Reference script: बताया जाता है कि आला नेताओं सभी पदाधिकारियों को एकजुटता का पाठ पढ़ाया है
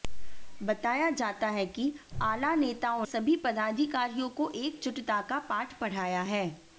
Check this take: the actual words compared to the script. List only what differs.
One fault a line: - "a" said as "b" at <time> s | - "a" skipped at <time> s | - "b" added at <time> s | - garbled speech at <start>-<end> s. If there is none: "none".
none